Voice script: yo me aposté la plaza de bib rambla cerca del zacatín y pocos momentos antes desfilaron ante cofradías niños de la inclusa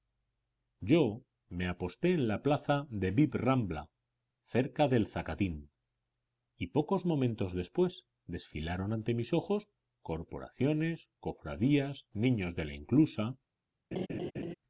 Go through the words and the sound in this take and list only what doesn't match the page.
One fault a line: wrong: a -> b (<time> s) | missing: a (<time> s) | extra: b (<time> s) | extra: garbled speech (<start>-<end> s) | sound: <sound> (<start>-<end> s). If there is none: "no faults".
extra: en (2.1 s)
wrong: antes -> después (7.5 s)
extra: mis ojos corporaciones (9.1 s)
sound: laugh (13.9-14.5 s)